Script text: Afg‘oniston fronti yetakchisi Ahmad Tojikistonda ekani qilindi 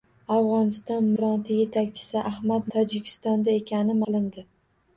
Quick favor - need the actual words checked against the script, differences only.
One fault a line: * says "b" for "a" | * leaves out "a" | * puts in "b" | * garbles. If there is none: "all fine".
all fine